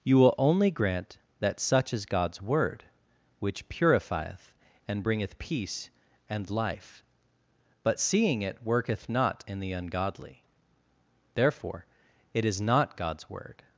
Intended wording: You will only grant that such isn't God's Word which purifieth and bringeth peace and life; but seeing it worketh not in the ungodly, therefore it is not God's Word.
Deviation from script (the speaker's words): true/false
true